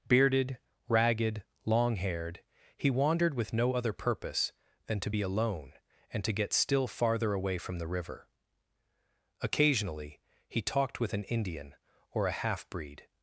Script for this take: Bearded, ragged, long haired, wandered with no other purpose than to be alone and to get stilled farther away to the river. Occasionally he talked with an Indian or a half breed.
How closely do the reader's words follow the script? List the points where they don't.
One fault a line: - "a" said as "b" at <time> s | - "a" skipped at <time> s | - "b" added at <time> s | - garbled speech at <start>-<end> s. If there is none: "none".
- "he" added at 2.8 s
- "stilled" said as "still" at 6.5 s
- "to" said as "from" at 7.6 s